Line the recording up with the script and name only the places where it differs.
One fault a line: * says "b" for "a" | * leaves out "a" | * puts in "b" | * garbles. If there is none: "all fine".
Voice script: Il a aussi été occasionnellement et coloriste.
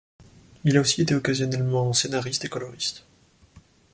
* puts in "scénariste"